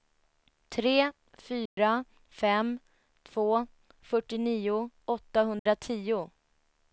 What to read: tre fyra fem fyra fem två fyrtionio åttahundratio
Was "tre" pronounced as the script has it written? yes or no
yes